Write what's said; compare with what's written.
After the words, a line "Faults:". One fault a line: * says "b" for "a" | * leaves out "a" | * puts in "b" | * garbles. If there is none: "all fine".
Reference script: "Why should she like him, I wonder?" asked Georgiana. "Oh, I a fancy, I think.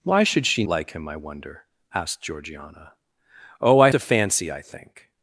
"Why should she like him, I wonder?" asked Georgiana. "Oh, I a fancy, I think.
Faults:
all fine